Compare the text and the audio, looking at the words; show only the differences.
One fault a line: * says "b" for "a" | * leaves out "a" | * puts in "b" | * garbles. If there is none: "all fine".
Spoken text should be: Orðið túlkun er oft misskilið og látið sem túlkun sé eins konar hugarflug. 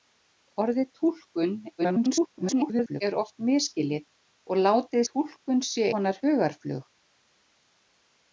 * garbles
* leaves out "sem"
* leaves out "eins"